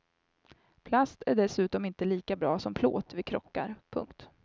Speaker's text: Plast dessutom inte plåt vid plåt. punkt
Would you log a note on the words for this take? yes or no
yes